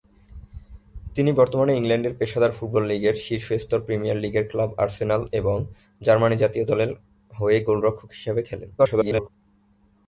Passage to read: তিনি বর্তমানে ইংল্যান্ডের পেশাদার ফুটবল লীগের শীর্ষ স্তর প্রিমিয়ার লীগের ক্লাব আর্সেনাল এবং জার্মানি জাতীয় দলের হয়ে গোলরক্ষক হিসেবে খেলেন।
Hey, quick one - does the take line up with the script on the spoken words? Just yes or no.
no